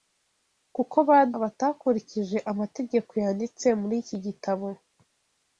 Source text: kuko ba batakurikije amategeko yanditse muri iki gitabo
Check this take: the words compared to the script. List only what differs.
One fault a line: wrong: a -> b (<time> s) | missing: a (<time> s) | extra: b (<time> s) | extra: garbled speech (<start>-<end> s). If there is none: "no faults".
no faults